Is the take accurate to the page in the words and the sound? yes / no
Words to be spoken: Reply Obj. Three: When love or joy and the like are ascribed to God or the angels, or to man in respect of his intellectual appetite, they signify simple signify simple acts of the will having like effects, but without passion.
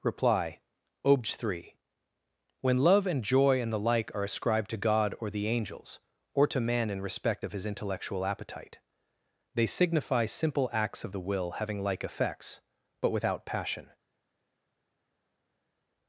no